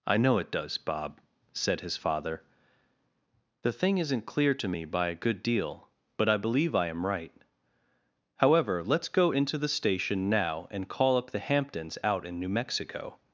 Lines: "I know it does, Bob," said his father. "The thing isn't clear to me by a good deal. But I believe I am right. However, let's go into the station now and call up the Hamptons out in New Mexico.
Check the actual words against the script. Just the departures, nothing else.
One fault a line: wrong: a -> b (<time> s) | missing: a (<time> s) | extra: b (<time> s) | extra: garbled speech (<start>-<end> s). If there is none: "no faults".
no faults